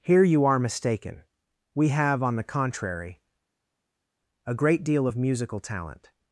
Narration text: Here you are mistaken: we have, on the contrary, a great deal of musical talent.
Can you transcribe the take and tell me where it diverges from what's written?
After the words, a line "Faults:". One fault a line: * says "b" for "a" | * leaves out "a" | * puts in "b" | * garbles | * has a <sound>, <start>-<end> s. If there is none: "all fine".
Here you are mistaken: we have, on the contrary, a great deal of musical talent.
Faults:
all fine